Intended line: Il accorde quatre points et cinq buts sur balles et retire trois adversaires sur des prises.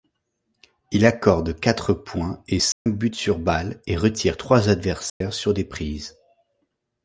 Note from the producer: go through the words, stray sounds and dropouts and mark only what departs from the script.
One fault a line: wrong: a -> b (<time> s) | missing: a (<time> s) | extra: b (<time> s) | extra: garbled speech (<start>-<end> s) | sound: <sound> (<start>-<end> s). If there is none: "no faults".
sound: dropout (2.7-2.9 s)
sound: dropout (5.1-5.2 s)